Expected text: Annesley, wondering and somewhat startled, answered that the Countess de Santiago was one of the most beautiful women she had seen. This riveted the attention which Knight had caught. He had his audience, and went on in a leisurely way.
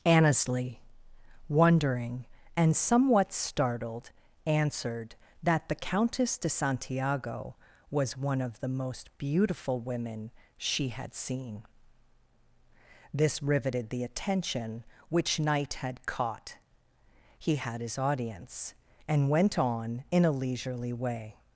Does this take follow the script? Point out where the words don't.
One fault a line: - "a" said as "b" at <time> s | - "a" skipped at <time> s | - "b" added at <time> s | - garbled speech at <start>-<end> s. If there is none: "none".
none